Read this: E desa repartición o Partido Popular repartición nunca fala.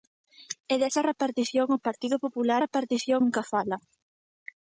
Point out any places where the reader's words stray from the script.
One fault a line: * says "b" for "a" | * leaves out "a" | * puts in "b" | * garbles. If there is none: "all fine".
all fine